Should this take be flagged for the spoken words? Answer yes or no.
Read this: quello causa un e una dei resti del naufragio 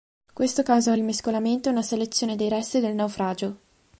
yes